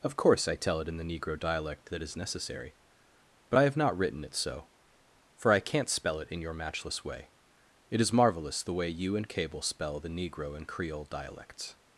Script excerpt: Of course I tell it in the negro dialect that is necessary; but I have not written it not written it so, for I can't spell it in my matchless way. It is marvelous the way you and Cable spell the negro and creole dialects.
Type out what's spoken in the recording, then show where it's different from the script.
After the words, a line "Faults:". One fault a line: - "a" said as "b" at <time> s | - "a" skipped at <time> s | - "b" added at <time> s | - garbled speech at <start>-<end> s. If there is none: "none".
Of course I tell it in the negro dialect that is necessary; but I have not written it so, for I can't spell it in your matchless way. It is marvelous the way you and Cable spell the negro and creole dialects.
Faults:
- "not written it" skipped at 4.3 s
- "my" said as "your" at 6.4 s